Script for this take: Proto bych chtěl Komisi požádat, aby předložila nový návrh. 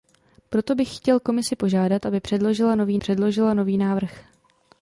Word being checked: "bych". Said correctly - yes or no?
yes